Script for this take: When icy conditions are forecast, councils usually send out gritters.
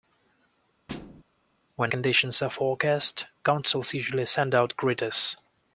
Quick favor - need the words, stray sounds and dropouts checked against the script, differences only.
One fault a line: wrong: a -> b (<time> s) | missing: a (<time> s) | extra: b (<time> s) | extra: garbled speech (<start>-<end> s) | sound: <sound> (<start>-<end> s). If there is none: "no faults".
sound: thud (0.9-1.2 s)
missing: icy (1.9 s)